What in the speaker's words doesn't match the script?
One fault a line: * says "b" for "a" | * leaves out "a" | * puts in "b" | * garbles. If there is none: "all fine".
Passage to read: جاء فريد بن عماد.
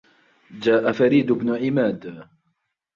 all fine